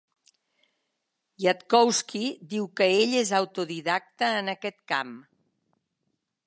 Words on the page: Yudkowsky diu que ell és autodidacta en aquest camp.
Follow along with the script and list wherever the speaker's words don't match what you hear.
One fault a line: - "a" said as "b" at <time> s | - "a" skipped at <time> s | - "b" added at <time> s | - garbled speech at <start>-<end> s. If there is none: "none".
none